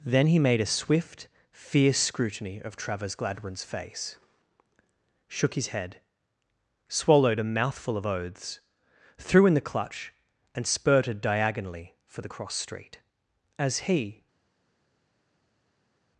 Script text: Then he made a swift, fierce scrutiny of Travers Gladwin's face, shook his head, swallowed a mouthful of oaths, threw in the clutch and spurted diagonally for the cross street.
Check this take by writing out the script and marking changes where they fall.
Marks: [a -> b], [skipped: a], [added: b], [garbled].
Then he made a swift, fierce scrutiny of Travers Gladwin's face, shook his head, swallowed a mouthful of oaths, threw in the clutch and spurted diagonally for the cross street. [added: As he]